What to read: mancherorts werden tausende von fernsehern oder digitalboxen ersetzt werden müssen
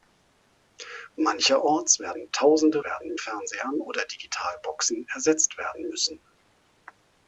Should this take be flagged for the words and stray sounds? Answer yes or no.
yes